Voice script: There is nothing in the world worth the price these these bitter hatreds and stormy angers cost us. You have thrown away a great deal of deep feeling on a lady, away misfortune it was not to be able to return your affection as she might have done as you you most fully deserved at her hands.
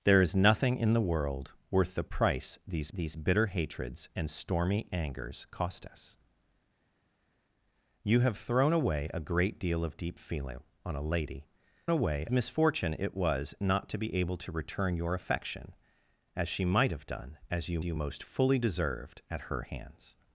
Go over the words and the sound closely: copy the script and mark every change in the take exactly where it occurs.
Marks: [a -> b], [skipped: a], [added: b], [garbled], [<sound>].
There is nothing in the world worth the price these these bitter hatreds and stormy angers cost us. You have thrown away a great deal of deep feeling on a lady, away misfortune it was not to be able to return your affection as she might have done as you you most fully deserved at her hands.